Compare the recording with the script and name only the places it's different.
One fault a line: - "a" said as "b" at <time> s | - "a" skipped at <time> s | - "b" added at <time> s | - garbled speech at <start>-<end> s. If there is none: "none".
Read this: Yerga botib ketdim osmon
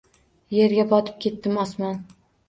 none